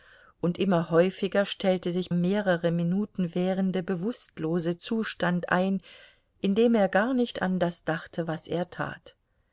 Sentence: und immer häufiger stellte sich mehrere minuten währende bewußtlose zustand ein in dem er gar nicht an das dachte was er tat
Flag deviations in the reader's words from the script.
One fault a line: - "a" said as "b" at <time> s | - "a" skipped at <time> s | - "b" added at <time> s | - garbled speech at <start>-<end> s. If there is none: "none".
none